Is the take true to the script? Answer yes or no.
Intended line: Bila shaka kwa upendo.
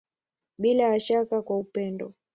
no